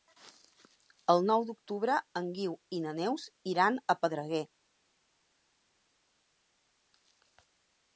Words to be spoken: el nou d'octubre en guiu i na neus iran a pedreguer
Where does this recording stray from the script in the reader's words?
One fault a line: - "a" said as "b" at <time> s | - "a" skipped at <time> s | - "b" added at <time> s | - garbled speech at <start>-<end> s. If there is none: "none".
none